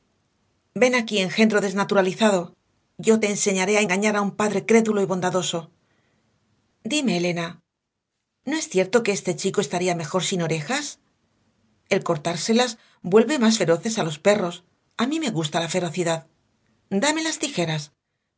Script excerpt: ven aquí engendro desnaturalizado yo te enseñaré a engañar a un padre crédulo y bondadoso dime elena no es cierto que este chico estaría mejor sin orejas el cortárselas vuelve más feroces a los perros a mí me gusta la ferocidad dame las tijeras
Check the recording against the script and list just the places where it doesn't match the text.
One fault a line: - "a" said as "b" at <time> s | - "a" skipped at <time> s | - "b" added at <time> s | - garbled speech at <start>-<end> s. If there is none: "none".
none